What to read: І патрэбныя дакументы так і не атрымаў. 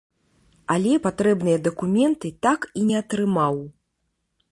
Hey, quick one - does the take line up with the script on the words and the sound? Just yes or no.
no